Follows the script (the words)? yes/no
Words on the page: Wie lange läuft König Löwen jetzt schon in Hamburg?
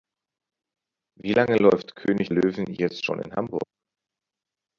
yes